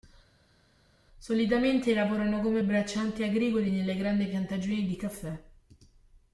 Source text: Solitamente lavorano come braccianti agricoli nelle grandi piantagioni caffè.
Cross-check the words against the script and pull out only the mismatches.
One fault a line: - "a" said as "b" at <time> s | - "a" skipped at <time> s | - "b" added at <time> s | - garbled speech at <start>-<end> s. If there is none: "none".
- "di" added at 4.8 s